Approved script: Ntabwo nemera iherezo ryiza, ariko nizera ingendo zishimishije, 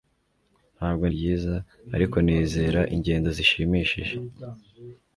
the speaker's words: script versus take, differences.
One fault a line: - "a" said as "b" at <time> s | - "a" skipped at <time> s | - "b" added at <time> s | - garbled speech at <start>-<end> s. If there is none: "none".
- "nemera iherezo" skipped at 1.0 s